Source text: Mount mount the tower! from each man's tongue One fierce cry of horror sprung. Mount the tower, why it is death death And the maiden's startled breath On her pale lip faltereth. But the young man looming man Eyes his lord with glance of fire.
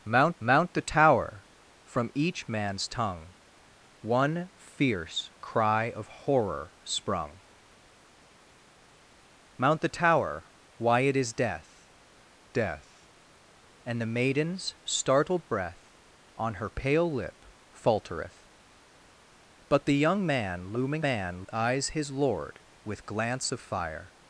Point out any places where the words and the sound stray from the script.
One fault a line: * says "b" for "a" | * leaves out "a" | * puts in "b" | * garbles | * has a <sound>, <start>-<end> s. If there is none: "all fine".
all fine